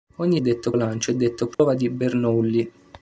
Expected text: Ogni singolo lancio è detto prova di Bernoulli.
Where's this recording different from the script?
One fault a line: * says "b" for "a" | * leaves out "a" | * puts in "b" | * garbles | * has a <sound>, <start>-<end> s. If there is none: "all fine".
* says "detto" for "singolo"
* has a dropout, 1.5-1.6 s